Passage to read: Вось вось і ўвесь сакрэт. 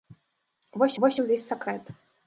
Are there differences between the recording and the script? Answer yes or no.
no